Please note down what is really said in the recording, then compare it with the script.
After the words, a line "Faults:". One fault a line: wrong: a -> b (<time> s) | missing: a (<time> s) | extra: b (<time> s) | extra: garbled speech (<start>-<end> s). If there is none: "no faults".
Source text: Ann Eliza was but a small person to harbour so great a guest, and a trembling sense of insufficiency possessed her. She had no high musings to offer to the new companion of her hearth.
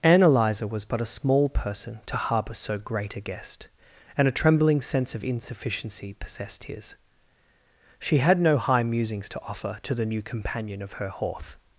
Ann Eliza was but a small person to harbour so great a guest, and a trembling sense of insufficiency possessed his. She had no high musings to offer to the new companion of her hearth.
Faults:
wrong: her -> his (6.6 s)